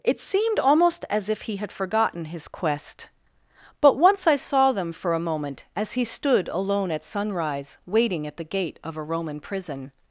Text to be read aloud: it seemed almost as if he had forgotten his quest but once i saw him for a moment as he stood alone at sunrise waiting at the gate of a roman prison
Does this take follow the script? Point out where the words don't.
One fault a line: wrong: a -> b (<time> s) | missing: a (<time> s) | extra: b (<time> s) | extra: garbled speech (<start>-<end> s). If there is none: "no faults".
wrong: him -> them (4.7 s)